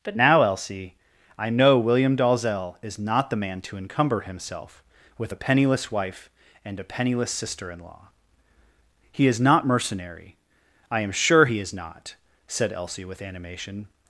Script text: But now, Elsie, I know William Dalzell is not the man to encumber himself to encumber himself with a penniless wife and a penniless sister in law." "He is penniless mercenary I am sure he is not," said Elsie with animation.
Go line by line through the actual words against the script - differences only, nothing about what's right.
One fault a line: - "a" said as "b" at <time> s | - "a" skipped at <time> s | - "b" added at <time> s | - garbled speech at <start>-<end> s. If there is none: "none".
- "to encumber himself" skipped at 4.8 s
- "penniless" said as "not" at 9.4 s